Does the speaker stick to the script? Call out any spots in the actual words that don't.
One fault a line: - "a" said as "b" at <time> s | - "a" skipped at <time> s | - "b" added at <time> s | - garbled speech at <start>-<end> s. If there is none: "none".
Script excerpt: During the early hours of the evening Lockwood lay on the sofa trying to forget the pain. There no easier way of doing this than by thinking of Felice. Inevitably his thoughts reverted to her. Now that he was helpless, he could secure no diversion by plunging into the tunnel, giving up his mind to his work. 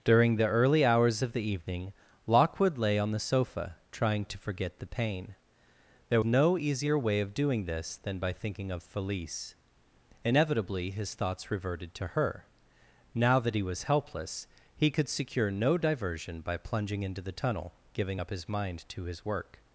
none